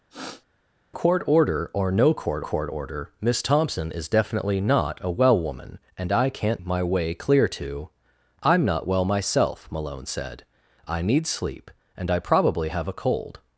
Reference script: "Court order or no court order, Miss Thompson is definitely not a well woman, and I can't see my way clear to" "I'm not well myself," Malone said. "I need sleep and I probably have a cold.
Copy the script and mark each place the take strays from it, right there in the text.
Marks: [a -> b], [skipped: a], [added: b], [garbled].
"Court order or no court [added: court] order, Miss Thompson is definitely not a well woman, and I can't [skipped: see] my way clear to" "I'm not well myself," Malone said. "I need sleep and I probably have a cold.